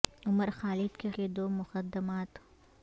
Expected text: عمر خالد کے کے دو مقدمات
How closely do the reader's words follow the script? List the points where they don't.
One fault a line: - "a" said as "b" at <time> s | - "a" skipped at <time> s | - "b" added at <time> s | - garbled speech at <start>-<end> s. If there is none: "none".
none